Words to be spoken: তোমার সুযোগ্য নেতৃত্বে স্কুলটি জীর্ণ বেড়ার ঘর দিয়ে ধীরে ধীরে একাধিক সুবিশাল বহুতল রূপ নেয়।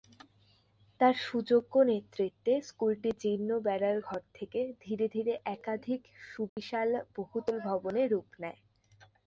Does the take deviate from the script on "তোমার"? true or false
true